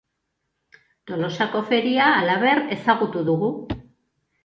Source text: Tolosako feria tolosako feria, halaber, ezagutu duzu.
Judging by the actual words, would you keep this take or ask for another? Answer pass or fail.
fail